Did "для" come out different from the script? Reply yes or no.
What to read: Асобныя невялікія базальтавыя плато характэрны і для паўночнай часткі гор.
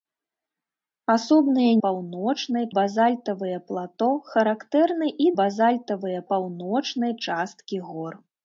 yes